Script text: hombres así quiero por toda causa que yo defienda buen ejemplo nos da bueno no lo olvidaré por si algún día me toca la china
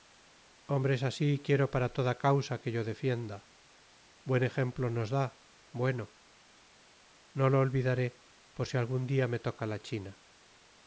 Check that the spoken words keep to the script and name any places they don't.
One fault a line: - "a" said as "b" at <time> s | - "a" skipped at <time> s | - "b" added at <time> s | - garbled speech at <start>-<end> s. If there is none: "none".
- "por" said as "para" at 1.7 s